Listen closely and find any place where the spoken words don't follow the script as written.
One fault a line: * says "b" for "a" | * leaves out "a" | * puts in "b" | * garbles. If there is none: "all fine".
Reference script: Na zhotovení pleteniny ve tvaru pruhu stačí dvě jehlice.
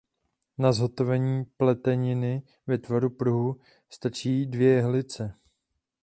all fine